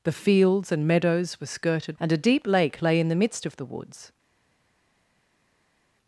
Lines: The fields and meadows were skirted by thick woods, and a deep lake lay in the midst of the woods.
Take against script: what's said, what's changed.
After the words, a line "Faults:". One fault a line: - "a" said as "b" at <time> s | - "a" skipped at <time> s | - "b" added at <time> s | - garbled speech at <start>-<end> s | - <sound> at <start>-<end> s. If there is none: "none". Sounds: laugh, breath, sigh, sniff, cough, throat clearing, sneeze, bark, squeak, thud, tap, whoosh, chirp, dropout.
The fields and meadows were skirted and a deep lake lay in the midst of the woods.
Faults:
- "by thick woods" skipped at 2.0 s